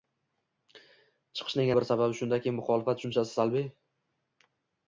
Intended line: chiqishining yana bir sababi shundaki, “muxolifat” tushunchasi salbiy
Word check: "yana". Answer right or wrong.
wrong